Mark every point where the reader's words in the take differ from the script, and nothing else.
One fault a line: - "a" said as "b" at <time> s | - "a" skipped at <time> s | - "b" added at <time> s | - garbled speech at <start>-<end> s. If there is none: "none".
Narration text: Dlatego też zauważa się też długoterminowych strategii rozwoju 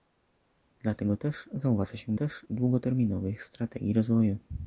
none